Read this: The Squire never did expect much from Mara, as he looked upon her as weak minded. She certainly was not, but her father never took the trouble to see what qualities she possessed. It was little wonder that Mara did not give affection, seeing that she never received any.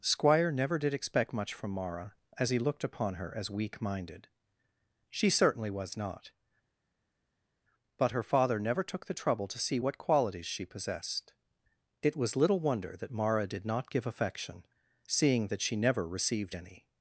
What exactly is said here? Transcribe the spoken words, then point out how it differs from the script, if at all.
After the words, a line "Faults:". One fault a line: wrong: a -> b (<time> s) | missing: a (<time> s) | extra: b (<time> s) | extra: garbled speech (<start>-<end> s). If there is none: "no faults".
Squire never did expect much from Mara, as he looked upon her as weak minded. She certainly was not, but her father never took the trouble to see what qualities she possessed. It was little wonder that Mara did not give affection, seeing that she never received any.
Faults:
missing: The (0.0 s)